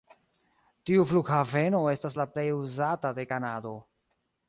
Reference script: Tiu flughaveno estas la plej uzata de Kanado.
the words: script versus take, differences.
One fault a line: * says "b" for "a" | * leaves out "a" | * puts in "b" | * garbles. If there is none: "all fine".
all fine